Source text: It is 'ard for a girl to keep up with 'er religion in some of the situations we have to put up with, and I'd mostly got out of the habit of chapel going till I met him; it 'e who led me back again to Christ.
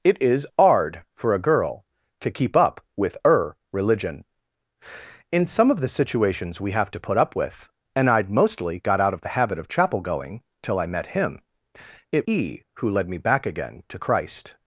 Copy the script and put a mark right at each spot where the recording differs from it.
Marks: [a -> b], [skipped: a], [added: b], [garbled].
It is 'ard for a girl to keep up with 'er religion in some of the situations we have to put up with, and I'd mostly got out of the habit of chapel going till I met him; it 'e who led me back again to Christ.